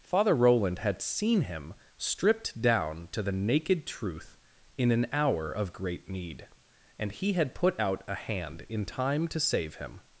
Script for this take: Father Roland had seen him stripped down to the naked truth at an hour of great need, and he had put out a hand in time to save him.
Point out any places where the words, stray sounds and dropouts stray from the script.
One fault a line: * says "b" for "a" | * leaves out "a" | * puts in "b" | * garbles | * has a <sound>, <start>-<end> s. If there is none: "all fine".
* says "in" for "at"